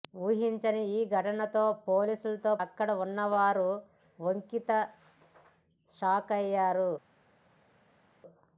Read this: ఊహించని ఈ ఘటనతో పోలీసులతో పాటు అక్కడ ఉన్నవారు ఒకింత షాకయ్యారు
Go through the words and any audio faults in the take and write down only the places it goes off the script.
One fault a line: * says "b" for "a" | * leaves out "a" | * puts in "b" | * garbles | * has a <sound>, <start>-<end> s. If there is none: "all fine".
* leaves out "పాటు"